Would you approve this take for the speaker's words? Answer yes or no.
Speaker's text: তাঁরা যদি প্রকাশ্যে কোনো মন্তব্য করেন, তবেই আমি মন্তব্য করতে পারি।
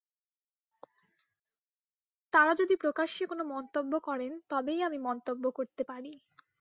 yes